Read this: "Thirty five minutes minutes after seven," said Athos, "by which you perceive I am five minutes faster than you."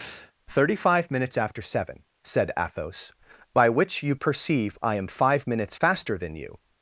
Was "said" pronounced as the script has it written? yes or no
yes